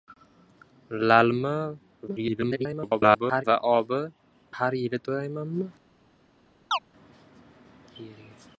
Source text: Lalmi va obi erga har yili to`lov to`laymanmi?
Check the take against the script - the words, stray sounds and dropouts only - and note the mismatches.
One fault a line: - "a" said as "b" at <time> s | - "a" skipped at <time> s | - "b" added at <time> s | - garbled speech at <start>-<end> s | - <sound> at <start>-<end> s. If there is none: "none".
- garbled speech at 2.1-3.4 s
- "erga" skipped at 4.0 s
- "to`lov" skipped at 5.0 s
- chirp at 6.7-6.8 s